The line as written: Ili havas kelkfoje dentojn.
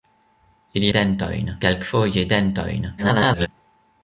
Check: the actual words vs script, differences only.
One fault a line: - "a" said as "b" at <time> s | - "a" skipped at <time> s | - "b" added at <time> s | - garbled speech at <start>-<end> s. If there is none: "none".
- "havas" said as "dentojn" at 1.0 s
- garbled speech at 3.0-3.5 s